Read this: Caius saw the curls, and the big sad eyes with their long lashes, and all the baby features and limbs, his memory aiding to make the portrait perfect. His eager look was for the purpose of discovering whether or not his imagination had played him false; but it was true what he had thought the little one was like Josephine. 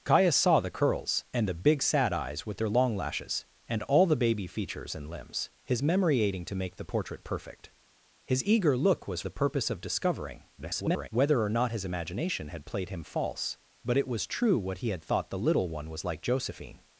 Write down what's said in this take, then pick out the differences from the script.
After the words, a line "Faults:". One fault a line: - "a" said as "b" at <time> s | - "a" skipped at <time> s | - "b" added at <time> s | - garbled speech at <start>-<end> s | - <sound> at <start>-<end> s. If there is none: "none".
Caius saw the curls, and the big sad eyes with their long lashes, and all the baby features and limbs, his memory aiding to make the portrait perfect. His eager look was the purpose of discovering [garbled] whether or not his imagination had played him false; but it was true what he had thought the little one was like Josephine.
Faults:
- "for" skipped at 9.2 s
- garbled speech at 10.6-11.1 s